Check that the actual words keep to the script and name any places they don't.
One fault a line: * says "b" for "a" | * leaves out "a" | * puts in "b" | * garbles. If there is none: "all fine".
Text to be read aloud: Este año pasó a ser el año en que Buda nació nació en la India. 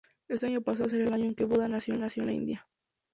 all fine